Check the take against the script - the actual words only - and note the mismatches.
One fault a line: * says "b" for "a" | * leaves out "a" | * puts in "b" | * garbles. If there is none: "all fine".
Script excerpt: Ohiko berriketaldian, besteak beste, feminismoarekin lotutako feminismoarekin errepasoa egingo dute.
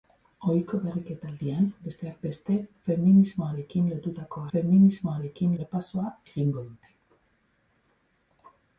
all fine